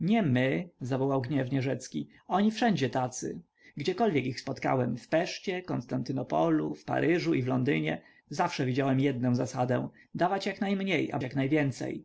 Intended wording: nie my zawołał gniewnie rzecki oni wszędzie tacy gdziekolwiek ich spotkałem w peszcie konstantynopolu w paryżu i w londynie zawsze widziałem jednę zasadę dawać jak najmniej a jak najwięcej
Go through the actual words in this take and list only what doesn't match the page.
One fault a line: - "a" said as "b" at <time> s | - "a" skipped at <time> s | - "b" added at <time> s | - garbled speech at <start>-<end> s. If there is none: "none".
none